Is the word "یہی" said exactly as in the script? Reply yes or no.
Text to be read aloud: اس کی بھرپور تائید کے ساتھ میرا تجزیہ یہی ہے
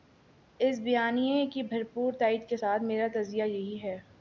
yes